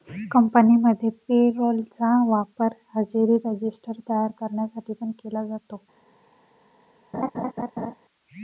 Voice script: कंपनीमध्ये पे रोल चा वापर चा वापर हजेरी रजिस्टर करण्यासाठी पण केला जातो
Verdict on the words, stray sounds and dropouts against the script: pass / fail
fail